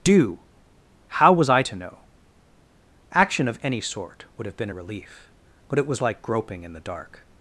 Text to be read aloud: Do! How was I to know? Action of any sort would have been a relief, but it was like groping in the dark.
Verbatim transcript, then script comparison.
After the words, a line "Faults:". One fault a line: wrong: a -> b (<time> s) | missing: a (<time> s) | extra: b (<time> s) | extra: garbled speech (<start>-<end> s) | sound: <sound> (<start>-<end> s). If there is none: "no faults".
Do! How was I to know? Action of any sort would have been a relief, but it was like groping in the dark.
Faults:
no faults